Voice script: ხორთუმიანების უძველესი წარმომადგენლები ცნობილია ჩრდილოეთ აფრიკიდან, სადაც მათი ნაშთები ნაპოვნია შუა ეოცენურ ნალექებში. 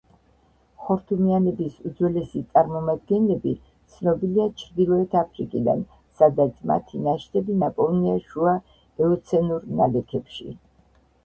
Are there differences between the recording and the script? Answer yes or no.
no